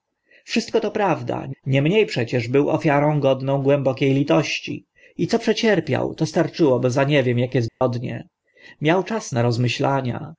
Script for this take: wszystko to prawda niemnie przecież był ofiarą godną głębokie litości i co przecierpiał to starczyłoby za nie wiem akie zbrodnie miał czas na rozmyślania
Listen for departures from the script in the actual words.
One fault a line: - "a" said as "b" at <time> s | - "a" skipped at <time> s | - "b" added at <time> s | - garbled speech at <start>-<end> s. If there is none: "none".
none